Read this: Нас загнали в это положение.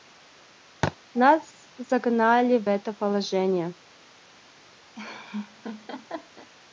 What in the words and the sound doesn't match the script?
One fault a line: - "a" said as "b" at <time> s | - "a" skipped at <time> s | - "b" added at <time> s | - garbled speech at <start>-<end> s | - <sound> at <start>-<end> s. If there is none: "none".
- thud at 0.8-1.0 s
- laugh at 4.9-6.5 s